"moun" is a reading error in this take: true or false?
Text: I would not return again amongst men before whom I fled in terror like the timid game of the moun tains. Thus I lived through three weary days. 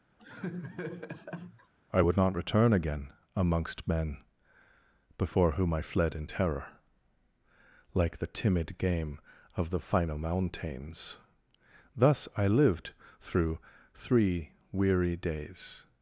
true